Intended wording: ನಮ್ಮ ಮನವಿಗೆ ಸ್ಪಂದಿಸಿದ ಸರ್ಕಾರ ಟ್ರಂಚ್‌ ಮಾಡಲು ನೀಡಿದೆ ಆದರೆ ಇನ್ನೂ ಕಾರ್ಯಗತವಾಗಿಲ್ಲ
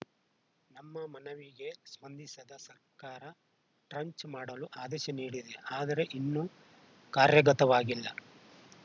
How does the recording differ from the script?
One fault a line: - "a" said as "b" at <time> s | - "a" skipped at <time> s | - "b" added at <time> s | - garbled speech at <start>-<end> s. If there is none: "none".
- "ಆದೇಶ" added at 4.8 s